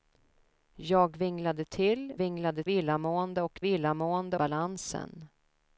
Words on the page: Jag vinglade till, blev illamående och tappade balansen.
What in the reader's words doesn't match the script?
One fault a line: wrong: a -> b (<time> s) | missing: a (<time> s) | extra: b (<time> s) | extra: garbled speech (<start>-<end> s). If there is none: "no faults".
wrong: blev -> vinglade (2.2 s)
wrong: tappade -> illamående (3.6 s)